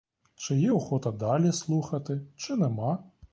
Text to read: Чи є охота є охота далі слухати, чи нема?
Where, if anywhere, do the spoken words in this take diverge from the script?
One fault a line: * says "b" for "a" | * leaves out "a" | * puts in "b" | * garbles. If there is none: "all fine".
* leaves out "є охота"